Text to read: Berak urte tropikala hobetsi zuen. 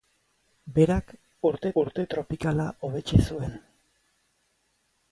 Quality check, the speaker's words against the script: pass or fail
fail